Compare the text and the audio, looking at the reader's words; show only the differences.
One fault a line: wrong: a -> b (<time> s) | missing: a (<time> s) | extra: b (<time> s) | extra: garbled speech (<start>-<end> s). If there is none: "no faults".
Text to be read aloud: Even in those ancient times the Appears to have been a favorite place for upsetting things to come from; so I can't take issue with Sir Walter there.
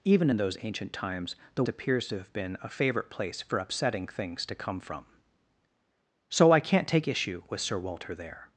no faults